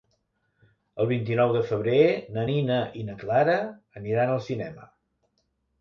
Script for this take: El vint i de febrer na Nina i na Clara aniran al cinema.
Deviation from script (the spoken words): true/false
true